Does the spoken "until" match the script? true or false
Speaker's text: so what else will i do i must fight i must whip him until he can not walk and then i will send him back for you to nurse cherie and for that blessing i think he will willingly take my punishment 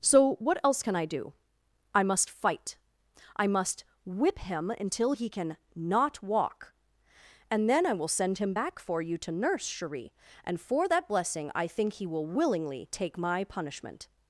true